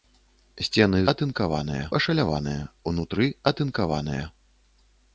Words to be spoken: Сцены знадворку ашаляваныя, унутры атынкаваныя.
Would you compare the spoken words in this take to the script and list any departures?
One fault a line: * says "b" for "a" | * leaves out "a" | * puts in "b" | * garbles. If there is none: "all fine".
* says "атынкаваныя" for "знадворку"